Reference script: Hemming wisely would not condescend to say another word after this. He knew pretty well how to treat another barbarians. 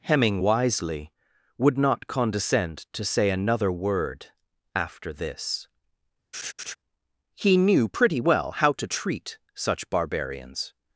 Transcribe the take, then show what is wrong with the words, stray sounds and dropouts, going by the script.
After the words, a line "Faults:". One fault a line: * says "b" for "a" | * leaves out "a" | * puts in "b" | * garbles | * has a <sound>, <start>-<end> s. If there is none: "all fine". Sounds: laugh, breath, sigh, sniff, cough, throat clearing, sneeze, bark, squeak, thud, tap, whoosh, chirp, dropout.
Hemming wisely would not condescend to say another word after this. He knew pretty well how to treat such barbarians.
Faults:
* has a laugh, 6.3-6.8 s
* says "such" for "another"